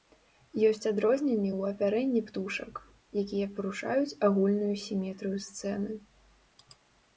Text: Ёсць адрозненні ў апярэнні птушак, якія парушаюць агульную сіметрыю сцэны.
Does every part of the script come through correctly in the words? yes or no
yes